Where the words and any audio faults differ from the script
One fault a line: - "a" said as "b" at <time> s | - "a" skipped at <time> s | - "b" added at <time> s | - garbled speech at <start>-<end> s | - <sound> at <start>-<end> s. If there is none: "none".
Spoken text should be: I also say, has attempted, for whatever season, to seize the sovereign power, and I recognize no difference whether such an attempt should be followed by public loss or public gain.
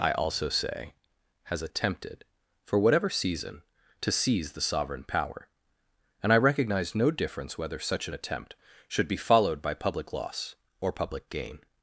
none